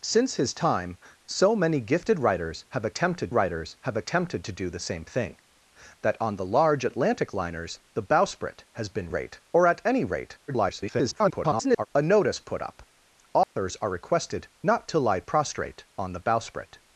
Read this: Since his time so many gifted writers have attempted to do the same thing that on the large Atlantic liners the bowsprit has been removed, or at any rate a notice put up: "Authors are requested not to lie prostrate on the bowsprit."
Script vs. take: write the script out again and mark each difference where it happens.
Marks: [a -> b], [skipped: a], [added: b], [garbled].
Since his time so many gifted writers have attempted [added: writers have attempted] to do the same thing that on the large Atlantic liners the bowsprit has been [removed, -> rate] or at any rate [garbled] a notice put up: "Authors are requested not to lie prostrate on the bowsprit."